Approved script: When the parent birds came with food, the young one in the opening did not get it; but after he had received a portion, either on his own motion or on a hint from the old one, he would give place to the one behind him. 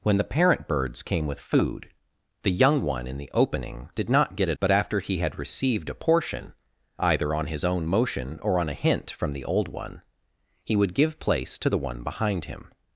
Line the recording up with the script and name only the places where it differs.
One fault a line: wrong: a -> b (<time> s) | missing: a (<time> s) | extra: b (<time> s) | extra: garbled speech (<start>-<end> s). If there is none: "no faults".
no faults